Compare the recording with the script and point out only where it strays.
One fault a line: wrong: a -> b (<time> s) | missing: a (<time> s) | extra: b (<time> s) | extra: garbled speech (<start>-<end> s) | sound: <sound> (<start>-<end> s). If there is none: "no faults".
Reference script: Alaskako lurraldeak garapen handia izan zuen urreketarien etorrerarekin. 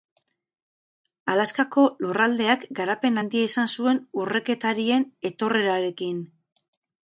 no faults